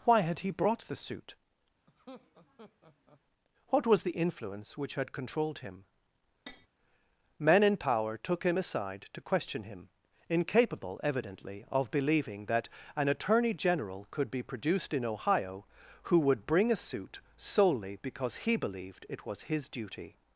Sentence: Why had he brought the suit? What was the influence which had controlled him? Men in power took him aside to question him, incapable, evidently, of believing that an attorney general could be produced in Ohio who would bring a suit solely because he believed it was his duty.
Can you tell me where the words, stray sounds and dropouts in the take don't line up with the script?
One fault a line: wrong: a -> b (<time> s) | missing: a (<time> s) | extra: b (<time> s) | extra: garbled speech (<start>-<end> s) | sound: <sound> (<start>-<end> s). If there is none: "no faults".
sound: laugh (1.9-3.2 s)
sound: tap (6.5-6.7 s)